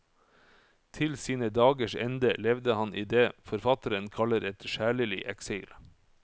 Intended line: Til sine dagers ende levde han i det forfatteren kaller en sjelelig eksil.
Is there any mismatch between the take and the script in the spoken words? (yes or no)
yes